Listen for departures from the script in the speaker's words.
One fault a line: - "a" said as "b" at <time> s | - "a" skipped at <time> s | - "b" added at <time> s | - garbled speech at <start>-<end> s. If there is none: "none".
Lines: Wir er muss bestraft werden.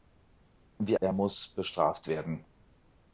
none